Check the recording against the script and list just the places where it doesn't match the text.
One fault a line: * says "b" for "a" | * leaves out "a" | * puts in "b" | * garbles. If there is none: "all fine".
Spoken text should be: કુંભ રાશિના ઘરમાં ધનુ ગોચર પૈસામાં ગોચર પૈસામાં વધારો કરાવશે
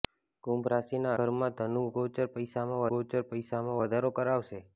all fine